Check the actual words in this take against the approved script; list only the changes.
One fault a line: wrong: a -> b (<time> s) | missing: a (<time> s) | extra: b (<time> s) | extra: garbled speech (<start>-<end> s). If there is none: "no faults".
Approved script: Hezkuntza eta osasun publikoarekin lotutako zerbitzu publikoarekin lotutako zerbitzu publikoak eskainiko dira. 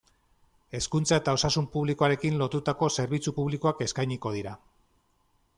missing: publikoarekin lotutako zerbitzu (3.4 s)